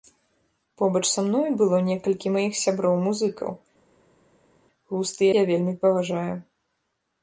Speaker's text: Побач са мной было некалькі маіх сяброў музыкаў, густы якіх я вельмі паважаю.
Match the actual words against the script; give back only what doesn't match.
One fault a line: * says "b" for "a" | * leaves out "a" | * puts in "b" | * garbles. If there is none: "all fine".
* leaves out "якіх"